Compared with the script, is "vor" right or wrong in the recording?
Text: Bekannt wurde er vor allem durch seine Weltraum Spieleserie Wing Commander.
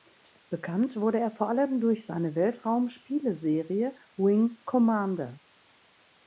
right